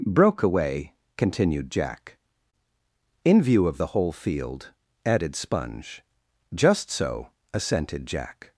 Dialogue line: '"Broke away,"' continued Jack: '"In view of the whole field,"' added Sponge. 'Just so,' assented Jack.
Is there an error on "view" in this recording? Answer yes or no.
no